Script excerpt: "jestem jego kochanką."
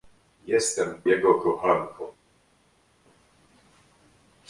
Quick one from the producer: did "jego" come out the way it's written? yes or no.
yes